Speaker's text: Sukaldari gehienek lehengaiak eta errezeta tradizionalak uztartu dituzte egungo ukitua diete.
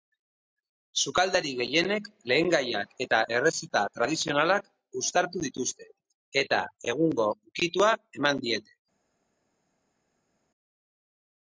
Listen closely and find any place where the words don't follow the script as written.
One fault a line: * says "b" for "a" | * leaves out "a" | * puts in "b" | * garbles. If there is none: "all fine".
* puts in "eta"
* puts in "eman"